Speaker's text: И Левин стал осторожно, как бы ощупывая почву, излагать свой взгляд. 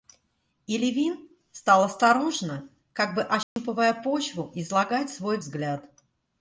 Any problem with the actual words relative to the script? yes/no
no